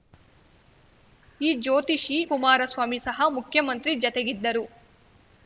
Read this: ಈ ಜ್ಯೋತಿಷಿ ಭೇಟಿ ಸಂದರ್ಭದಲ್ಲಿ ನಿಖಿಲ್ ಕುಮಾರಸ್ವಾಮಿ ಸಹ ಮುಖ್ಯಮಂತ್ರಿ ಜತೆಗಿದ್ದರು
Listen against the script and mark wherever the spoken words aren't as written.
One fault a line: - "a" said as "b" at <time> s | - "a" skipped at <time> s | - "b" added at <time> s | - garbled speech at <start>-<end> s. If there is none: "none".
- "ಭೇಟಿ ಸಂದರ್ಭದಲ್ಲಿ ನಿಖಿಲ್" skipped at 2.2 s